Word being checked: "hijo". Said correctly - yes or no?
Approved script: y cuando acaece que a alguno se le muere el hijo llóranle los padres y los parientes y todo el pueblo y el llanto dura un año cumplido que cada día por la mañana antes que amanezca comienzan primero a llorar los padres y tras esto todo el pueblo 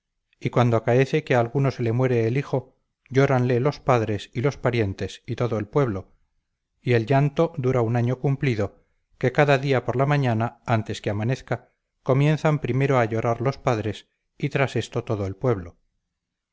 yes